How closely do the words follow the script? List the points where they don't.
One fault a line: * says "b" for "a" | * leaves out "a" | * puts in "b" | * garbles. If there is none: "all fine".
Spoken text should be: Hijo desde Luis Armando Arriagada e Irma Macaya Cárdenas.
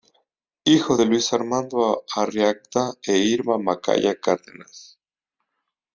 * says "de" for "desde"